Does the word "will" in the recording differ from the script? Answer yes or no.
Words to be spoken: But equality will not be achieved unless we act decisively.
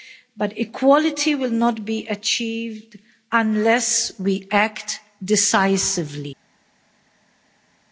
no